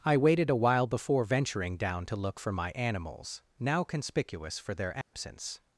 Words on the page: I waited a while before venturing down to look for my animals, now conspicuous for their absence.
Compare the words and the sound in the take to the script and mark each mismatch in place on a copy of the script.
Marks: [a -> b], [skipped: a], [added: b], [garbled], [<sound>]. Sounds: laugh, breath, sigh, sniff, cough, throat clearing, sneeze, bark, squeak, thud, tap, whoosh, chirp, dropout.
I waited a while before venturing down to look for my animals, now conspicuous for their absence. [dropout]